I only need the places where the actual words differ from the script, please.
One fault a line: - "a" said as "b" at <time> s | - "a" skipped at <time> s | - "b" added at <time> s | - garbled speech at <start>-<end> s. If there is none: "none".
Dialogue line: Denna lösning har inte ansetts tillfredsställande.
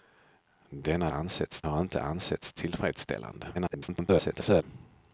- "lösning" said as "ansetts" at 1.1 s
- garbled speech at 3.5-4.6 s